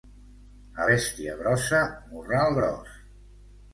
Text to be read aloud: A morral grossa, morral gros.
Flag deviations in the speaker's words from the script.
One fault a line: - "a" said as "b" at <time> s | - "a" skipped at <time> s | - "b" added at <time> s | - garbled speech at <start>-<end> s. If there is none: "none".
- "morral" said as "bèstia" at 0.9 s